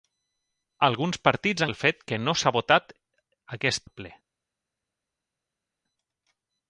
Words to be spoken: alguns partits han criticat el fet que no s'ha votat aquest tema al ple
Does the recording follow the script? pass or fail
fail